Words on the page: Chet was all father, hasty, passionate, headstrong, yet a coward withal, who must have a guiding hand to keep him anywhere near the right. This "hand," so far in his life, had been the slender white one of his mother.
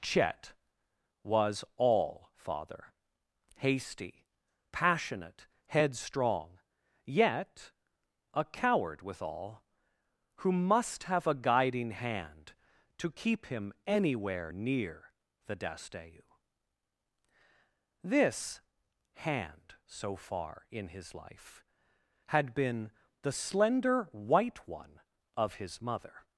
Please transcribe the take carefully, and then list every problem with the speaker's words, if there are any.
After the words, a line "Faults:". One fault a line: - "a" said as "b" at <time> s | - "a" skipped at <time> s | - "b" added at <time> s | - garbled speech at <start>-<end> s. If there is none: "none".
Chet was all father, hasty, passionate, headstrong, yet a coward withal, who must have a guiding hand to keep him anywhere near the dasteu. This "hand," so far in his life, had been the slender white one of his mother.
Faults:
- "right" said as "dasteu" at 15.5 s